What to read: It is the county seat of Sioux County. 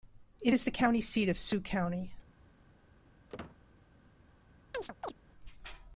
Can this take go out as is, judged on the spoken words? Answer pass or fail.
pass